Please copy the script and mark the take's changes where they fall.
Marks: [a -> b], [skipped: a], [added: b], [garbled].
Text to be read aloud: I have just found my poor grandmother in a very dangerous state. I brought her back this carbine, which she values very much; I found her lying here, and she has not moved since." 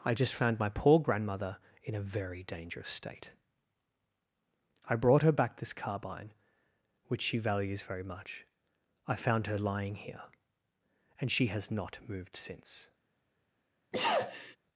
I [skipped: have] just found my poor grandmother in a very dangerous state. I brought her back this carbine, which she values very much; I found her lying here, and she has not moved since."